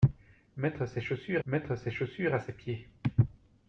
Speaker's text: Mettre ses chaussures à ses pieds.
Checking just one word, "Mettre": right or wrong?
right